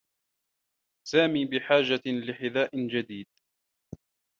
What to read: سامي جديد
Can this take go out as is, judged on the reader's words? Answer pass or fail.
fail